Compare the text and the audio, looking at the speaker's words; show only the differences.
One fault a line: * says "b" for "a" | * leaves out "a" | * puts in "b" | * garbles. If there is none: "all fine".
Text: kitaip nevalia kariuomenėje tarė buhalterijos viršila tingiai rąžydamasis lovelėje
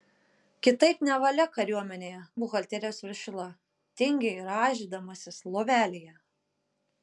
* leaves out "tarė"